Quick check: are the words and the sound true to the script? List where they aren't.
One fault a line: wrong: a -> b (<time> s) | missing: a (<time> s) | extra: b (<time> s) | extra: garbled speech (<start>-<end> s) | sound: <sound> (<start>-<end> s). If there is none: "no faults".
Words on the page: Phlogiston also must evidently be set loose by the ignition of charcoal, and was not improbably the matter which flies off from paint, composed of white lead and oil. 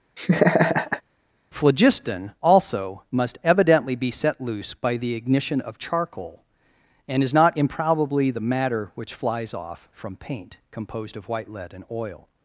sound: laugh (0.2-1.0 s)
wrong: was -> is (7.2 s)